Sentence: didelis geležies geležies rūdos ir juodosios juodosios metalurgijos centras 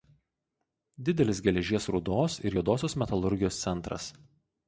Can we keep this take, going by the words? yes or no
no